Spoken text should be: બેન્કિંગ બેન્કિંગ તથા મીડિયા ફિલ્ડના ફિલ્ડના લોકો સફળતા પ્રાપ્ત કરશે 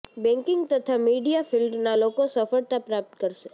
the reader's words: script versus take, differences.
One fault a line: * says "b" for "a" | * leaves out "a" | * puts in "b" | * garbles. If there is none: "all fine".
* leaves out "બેન્કિંગ"
* leaves out "ફિલ્ડના"